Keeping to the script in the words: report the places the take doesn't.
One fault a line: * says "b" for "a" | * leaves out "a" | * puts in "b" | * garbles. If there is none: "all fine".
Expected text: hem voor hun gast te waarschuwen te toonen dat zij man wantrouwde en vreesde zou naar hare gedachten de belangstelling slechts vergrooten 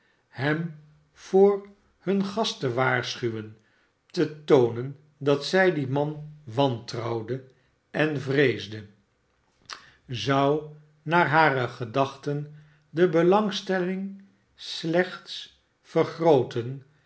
* puts in "dien"